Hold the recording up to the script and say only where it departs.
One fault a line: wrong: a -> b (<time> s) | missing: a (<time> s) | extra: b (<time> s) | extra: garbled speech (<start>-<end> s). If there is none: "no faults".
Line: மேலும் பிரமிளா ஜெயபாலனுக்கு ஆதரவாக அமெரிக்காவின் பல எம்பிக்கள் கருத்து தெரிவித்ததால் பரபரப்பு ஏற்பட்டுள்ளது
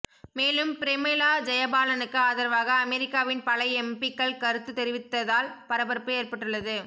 no faults